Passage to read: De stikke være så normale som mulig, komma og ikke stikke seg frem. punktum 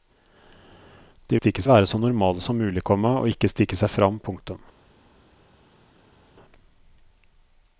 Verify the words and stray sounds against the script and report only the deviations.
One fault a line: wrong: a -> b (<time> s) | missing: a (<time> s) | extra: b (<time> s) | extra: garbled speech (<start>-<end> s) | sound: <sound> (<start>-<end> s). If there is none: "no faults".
no faults